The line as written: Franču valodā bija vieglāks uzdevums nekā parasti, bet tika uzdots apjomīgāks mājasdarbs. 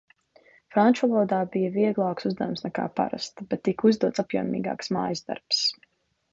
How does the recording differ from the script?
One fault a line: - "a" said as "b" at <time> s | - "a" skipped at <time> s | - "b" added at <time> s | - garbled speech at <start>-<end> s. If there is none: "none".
none